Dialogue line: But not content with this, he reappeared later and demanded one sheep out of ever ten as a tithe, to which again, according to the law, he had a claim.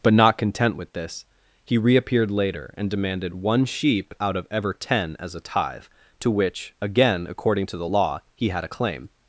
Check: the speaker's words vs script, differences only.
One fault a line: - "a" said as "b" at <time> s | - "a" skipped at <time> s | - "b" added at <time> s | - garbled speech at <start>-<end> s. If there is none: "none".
none